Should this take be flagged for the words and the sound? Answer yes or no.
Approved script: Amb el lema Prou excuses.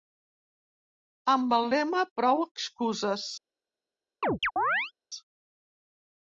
yes